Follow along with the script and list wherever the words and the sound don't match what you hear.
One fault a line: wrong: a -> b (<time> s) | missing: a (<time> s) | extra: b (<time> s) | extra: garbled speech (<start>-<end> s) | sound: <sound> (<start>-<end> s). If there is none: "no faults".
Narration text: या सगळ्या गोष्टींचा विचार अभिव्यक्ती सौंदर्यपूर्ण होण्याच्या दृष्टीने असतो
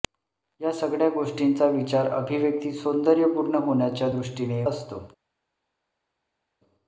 no faults